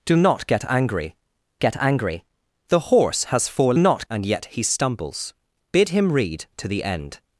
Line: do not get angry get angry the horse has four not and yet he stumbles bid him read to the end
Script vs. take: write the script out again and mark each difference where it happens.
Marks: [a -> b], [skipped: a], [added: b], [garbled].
do not get angry get angry the horse has four not and yet he stumbles bid him read to the end